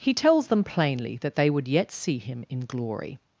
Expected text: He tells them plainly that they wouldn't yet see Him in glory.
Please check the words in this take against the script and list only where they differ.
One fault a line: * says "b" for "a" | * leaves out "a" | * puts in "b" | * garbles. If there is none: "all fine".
* says "would" for "wouldn't"